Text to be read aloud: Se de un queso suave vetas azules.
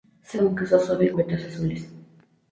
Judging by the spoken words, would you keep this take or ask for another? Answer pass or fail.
pass